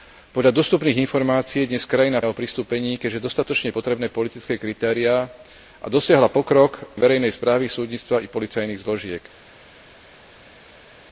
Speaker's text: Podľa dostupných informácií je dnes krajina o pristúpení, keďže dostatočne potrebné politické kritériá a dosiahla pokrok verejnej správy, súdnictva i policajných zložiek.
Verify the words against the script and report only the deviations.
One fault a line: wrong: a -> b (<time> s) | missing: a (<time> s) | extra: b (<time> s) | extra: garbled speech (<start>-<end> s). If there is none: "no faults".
no faults